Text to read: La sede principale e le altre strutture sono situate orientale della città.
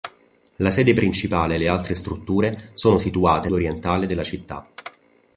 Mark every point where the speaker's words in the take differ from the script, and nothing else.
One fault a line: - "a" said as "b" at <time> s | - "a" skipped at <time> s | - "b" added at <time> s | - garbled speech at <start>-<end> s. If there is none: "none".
none